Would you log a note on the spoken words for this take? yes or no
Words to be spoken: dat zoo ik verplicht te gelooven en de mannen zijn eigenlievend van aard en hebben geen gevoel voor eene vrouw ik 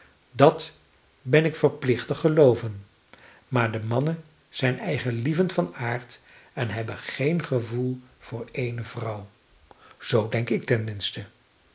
yes